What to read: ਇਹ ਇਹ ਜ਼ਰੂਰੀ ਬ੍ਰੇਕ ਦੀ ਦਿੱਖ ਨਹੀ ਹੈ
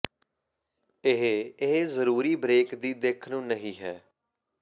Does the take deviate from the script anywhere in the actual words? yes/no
yes